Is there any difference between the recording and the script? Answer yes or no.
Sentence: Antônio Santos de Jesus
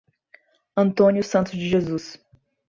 no